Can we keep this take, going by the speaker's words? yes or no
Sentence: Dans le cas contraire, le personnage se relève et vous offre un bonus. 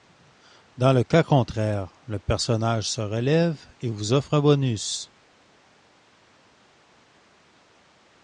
yes